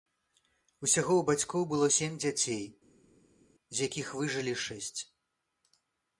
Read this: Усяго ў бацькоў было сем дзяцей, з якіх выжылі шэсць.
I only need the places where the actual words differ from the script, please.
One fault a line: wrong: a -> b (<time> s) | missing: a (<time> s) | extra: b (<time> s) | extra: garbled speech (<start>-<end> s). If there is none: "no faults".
no faults